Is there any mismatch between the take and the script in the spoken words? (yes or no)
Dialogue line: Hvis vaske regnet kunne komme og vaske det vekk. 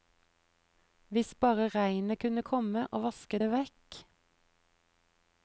yes